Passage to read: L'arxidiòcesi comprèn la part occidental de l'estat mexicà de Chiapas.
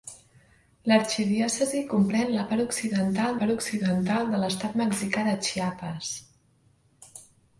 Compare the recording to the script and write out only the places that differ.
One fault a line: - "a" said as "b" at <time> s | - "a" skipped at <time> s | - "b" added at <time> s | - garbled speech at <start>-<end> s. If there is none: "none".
- "part occidental" added at 3.4 s